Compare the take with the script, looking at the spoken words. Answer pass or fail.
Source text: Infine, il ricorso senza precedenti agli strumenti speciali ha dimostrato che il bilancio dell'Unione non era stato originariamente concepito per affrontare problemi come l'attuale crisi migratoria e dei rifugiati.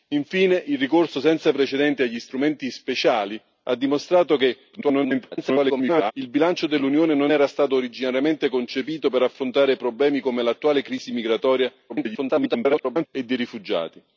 fail